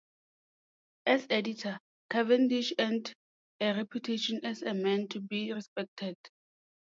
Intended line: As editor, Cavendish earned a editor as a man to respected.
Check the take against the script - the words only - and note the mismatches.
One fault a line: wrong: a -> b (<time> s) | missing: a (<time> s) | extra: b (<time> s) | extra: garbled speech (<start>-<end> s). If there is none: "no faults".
wrong: editor -> reputation (3.8 s)
extra: be (5.2 s)